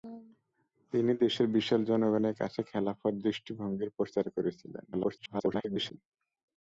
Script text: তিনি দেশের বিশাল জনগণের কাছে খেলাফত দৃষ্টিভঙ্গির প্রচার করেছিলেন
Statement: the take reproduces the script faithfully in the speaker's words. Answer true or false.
false